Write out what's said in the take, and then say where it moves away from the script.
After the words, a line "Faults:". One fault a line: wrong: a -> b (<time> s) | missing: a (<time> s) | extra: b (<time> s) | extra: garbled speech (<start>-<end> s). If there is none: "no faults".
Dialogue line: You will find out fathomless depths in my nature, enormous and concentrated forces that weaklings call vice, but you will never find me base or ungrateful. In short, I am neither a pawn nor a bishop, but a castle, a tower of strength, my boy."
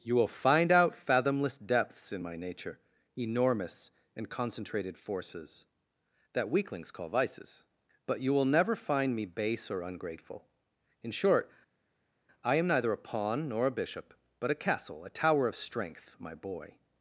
You will find out fathomless depths in my nature, enormous and concentrated forces that weaklings call vices, but you will never find me base or ungrateful. In short, I am neither a pawn nor a bishop, but a castle, a tower of strength, my boy."
Faults:
wrong: vice -> vices (7.1 s)